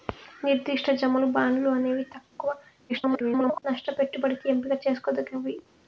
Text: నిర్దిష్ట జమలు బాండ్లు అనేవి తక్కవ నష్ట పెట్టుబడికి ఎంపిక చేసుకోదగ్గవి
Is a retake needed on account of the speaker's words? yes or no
yes